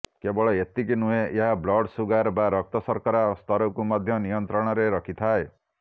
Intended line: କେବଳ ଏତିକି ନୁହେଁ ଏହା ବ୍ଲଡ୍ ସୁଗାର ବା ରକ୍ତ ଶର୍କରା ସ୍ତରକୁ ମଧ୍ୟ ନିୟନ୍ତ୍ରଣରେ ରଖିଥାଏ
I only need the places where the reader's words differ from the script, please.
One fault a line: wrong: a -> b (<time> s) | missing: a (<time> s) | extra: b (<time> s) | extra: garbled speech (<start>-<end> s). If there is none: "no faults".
no faults